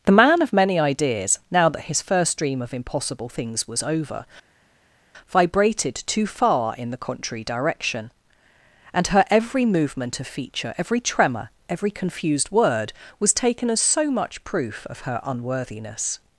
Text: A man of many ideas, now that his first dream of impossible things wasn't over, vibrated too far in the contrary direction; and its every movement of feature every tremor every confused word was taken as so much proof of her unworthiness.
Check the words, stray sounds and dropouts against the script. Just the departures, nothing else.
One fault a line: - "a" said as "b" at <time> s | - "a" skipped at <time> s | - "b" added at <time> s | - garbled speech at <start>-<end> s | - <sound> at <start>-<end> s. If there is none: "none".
- "A" said as "The" at 0.1 s
- "wasn't" said as "was" at 3.7 s
- "its" said as "her" at 9.1 s